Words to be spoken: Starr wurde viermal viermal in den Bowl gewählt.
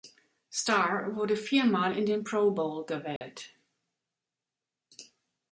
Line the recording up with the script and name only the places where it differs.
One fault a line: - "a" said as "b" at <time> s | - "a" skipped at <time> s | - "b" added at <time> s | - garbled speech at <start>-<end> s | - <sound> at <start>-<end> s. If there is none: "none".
- "viermal" skipped at 1.9 s
- "Pro" added at 2.2 s
- dropout at 3.2-3.2 s